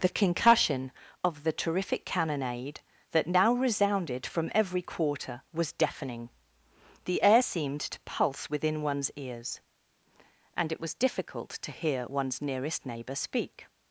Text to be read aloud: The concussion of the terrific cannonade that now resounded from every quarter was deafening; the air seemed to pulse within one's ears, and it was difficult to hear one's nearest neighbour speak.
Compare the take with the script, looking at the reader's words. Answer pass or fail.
pass